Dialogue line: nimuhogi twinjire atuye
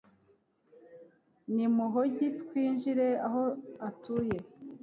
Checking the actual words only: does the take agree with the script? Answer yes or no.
no